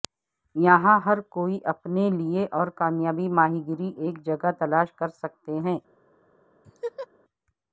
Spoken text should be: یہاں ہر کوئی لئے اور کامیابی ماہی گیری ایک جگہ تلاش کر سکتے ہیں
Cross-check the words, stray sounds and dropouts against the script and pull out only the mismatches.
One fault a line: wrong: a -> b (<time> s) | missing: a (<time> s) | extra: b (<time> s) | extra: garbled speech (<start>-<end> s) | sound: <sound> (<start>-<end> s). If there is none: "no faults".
extra: اپنے (1.6 s)
sound: laugh (6.6-7.1 s)